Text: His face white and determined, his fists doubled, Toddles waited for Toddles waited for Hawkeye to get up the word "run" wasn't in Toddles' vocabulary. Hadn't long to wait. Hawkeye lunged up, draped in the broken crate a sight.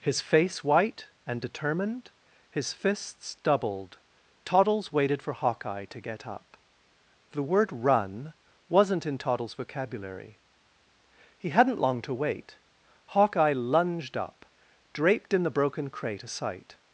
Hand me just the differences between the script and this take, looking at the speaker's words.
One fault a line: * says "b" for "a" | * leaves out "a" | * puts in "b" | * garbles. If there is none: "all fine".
* leaves out "Toddles waited for"
* puts in "He"